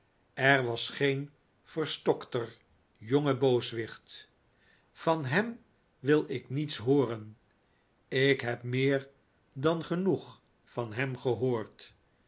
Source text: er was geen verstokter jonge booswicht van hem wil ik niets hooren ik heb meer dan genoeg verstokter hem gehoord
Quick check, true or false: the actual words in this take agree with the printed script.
false